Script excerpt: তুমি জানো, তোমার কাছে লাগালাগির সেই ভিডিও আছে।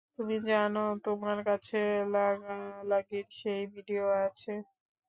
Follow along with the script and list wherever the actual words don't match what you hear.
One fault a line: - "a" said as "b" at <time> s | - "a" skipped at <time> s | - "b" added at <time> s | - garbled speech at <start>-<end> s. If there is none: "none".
none